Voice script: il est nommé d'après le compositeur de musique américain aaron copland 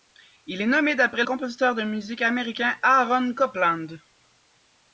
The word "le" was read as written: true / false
false